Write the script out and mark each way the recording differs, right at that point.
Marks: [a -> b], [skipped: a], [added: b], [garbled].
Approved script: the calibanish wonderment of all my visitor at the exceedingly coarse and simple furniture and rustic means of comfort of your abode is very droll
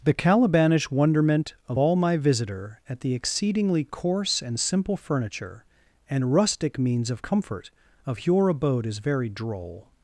the calibanish wonderment of all my visitor at the exceedingly coarse and simple furniture and rustic means of comfort of your abode is very droll